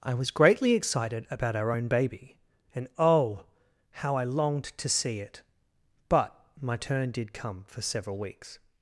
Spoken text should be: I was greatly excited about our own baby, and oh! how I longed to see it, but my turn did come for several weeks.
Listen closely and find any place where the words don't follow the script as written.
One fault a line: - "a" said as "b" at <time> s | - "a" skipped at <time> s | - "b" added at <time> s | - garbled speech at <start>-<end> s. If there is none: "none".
none